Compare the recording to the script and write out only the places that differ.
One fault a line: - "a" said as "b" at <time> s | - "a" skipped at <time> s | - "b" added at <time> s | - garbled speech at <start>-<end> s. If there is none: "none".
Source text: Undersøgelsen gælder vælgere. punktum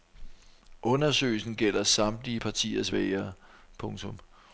- "samtlige partiers" added at 1.8 s